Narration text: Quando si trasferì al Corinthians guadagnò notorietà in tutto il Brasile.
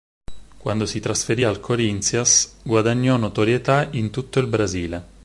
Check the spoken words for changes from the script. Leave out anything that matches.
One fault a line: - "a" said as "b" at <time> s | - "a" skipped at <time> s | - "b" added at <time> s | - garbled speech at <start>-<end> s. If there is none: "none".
none